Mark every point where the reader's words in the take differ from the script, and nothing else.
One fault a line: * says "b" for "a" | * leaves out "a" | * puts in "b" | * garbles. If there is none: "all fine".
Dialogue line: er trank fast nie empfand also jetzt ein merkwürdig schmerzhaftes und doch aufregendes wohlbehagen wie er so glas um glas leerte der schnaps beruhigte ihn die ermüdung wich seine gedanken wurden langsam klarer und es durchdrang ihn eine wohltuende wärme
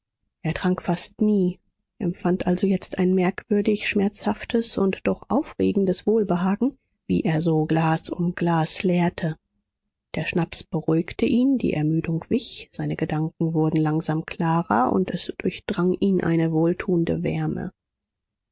all fine